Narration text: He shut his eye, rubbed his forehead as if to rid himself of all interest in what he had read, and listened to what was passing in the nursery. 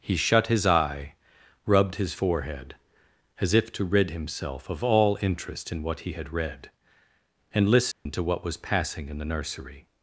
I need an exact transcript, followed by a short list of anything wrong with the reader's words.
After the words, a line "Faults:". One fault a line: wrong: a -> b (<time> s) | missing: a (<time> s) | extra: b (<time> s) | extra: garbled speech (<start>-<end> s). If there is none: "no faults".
He shut his eye, rubbed his forehead as if to rid himself of all interest in what he had read, and listened to what was passing in the nursery.
Faults:
no faults